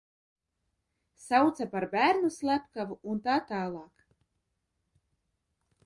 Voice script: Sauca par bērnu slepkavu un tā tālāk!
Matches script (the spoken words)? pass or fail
pass